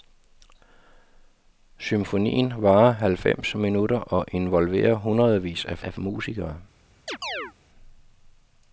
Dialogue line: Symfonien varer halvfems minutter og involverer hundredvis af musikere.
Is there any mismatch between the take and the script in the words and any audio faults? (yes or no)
yes